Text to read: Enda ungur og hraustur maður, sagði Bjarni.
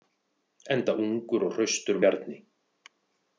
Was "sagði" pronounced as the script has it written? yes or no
no